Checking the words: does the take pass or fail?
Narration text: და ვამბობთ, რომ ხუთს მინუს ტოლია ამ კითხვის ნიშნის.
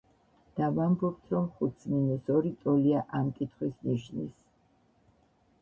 fail